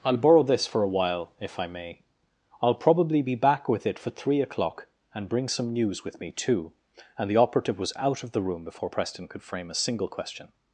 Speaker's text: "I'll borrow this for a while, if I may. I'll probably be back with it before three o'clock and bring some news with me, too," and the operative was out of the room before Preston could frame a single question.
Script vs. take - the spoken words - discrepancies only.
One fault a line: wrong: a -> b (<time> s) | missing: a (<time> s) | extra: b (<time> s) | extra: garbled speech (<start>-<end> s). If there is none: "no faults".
wrong: before -> for (4.0 s)